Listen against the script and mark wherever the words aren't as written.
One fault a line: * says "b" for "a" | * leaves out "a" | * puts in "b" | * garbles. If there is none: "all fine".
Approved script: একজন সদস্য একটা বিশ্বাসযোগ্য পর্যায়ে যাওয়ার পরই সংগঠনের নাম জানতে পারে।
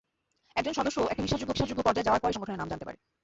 * puts in "বিশ্বাসযোগ্য"